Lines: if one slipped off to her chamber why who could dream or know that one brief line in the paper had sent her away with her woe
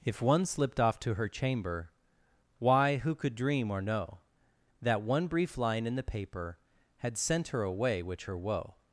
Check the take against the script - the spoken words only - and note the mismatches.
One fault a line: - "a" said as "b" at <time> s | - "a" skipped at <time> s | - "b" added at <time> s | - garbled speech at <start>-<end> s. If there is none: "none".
- "with" said as "which" at 8.0 s